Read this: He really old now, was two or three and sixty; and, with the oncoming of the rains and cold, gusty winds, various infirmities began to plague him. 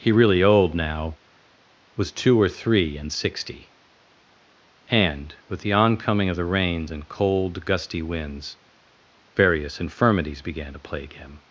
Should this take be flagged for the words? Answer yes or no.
no